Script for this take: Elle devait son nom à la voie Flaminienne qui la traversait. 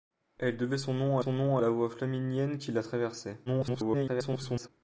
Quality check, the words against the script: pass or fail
fail